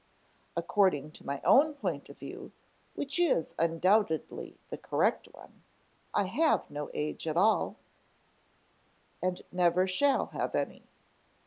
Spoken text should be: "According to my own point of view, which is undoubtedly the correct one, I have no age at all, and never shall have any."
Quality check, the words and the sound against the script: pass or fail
pass